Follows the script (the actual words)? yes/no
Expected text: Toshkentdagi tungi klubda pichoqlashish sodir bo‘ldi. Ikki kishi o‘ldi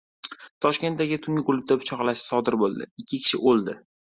yes